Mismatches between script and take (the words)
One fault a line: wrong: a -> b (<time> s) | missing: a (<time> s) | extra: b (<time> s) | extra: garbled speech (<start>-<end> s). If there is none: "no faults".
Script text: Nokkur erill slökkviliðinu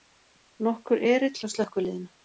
extra: hjá (1.4 s)